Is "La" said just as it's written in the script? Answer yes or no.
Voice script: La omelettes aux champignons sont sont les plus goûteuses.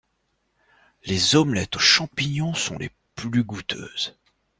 no